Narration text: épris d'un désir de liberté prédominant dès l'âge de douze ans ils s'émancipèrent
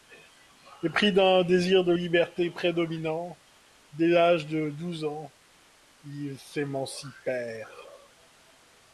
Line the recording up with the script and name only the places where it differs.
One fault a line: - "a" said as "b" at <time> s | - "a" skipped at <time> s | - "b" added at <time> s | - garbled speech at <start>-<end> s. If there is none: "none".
none